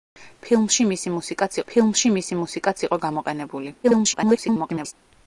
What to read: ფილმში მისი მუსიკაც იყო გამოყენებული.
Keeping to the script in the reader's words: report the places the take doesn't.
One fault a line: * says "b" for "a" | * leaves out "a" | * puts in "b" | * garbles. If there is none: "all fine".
* puts in "ფილმში მისი მუსიკაც"
* garbles